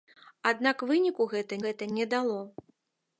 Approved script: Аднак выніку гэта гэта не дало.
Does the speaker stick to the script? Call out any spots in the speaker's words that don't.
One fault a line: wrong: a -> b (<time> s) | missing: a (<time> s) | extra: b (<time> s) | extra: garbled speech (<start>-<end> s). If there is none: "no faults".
no faults